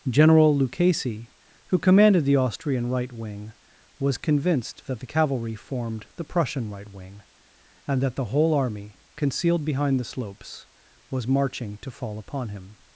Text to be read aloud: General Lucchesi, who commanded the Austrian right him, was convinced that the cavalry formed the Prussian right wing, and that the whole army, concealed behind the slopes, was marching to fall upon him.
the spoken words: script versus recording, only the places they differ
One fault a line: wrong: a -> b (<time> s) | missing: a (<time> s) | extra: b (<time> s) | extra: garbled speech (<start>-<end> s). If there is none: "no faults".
wrong: him -> wing (3.1 s)